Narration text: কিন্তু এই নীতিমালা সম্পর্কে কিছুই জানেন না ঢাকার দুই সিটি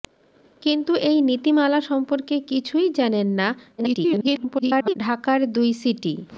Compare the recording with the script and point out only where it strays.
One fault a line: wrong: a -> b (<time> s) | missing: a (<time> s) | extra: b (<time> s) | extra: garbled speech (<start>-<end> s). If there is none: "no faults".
extra: garbled speech (3.8-4.9 s)